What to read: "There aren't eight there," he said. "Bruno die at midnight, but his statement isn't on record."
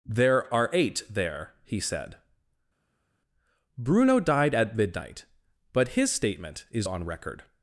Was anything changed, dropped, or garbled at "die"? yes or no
yes